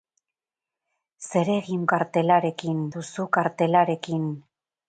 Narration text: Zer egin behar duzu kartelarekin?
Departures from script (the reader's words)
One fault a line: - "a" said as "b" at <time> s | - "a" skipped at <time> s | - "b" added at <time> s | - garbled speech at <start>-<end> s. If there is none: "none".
- "behar" said as "kartelarekin" at 1.9 s